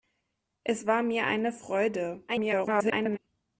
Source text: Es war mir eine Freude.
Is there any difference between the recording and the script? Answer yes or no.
yes